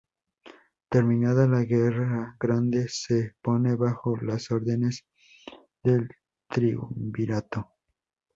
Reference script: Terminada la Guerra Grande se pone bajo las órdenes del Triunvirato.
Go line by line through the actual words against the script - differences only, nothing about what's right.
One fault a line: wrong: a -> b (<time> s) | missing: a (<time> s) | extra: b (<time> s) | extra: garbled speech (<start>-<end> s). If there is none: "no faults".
no faults